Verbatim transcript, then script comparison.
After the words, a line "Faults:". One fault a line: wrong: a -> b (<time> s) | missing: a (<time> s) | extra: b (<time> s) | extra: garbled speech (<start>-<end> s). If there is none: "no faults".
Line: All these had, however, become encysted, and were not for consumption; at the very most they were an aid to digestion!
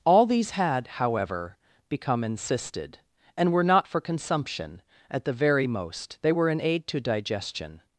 All these had, however, become encysted, and were not for consumption; at the very most they were an aid to digestion!
Faults:
no faults